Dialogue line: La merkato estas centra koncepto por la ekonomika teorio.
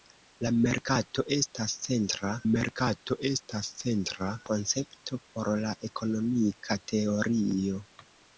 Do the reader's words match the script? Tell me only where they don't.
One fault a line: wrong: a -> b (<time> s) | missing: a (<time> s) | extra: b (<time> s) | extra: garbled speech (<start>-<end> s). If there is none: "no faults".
extra: merkato estas centra (2.5 s)